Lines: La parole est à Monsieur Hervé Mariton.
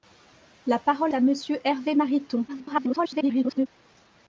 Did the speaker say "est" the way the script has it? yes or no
no